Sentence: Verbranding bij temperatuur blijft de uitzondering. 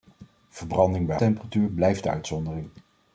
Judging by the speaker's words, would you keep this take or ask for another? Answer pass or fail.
pass